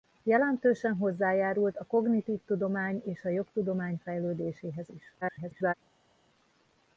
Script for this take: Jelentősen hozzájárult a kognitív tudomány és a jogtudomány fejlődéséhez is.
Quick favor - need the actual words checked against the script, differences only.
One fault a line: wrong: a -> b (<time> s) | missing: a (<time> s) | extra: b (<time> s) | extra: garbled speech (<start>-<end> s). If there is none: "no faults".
extra: garbled speech (5.2-5.7 s)